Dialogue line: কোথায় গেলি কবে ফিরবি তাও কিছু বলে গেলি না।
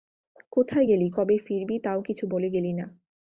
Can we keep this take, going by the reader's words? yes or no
yes